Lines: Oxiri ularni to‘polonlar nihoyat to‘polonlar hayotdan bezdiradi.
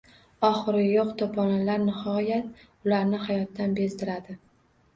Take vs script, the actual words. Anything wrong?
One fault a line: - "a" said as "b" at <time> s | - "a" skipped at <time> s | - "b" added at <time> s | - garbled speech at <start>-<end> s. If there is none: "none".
- "ularni" said as "yo‘q" at 0.8 s
- "to‘polonlar" said as "ularni" at 2.9 s